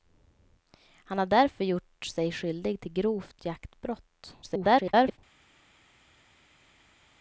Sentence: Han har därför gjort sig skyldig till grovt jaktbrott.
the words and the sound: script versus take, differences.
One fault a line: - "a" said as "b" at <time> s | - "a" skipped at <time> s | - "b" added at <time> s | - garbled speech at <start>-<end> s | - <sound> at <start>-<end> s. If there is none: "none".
- garbled speech at 4.4-5.2 s